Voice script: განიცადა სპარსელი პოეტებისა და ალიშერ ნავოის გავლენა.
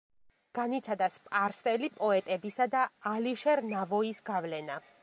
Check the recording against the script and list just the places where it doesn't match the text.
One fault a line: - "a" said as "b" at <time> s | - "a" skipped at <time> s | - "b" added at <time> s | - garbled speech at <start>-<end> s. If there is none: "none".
none